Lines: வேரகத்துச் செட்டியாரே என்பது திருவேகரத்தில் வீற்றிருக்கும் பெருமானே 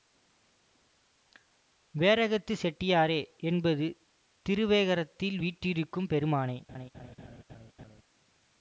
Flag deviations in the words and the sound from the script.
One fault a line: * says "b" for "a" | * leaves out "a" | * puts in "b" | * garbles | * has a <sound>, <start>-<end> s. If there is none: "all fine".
* has a laugh, 6.7-8.0 s